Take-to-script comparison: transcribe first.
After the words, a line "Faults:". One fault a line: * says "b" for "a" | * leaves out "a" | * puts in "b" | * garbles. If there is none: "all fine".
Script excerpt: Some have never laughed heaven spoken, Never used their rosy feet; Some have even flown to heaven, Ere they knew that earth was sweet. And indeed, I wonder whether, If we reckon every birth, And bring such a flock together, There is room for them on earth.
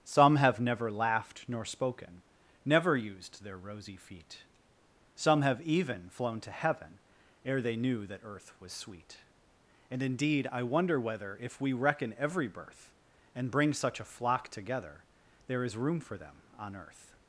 Some have never laughed nor spoken, Never used their rosy feet; Some have even flown to heaven, Ere they knew that earth was sweet. And indeed, I wonder whether, If we reckon every birth, And bring such a flock together, There is room for them on earth.
Faults:
* says "nor" for "heaven"